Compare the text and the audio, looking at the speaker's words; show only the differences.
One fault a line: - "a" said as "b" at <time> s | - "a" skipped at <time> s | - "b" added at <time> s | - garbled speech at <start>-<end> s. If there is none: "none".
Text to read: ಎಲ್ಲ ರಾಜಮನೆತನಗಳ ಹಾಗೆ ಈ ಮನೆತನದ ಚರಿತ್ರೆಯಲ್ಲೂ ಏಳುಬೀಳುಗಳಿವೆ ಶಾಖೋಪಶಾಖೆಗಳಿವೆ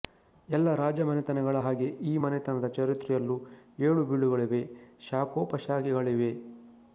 none